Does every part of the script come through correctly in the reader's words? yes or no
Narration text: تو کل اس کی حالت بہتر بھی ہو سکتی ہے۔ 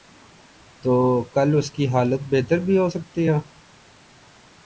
yes